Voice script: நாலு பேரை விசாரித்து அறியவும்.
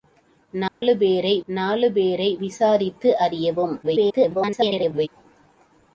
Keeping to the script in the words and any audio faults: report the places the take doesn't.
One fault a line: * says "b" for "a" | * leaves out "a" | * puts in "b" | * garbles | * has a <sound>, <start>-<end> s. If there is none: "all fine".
* has a dropout, 0.7-0.8 s
* puts in "நாலு பேரை"
* garbles